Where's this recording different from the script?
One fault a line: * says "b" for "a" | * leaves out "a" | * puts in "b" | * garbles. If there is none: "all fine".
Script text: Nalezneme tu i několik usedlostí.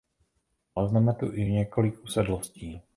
all fine